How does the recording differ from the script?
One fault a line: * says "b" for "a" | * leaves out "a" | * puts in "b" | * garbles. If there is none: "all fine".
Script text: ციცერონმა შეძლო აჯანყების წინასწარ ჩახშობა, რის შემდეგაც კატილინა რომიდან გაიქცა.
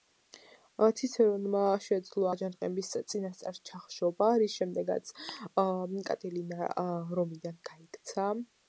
all fine